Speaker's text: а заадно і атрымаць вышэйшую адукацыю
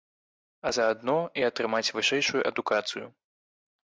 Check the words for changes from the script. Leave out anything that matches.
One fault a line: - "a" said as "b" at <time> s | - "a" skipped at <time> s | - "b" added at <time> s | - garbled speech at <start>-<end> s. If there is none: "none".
none